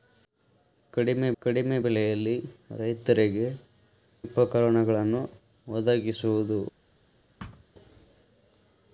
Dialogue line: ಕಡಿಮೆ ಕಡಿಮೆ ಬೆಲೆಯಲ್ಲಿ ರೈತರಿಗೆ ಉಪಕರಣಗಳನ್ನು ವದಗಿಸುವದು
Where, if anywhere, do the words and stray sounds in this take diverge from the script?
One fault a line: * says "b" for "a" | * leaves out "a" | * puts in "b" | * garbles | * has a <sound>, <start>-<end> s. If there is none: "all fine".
* has a thud, 7.4-7.6 s